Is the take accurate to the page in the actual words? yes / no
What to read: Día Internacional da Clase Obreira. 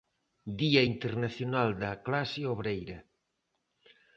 yes